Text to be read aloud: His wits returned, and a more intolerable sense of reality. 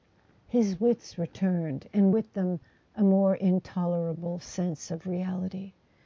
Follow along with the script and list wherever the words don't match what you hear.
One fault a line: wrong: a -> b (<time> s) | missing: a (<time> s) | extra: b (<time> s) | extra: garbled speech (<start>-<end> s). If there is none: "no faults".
extra: with them (2.1 s)